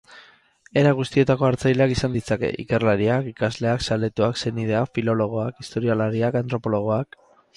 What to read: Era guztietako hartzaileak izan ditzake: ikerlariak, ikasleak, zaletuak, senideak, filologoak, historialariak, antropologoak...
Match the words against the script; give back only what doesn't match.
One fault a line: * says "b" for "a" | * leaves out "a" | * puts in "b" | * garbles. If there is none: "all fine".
all fine